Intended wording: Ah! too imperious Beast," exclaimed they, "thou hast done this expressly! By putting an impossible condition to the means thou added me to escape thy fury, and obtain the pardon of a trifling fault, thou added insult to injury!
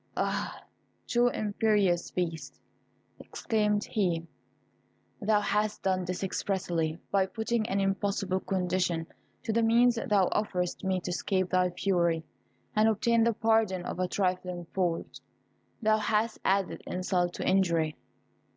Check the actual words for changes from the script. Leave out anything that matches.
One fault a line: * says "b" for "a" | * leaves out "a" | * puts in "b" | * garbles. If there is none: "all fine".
* says "he" for "they"
* says "offerest" for "added"
* puts in "hast"